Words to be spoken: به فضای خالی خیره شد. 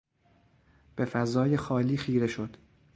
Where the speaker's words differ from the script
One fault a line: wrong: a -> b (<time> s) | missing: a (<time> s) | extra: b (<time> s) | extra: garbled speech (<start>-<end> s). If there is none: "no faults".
no faults